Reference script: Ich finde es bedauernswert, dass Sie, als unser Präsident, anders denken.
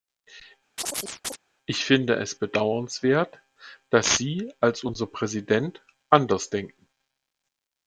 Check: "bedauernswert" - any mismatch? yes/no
no